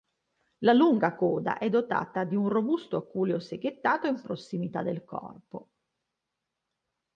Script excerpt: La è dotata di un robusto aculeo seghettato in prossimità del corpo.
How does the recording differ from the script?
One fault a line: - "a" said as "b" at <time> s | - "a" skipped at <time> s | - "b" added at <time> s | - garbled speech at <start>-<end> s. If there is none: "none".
- "lunga coda" added at 0.7 s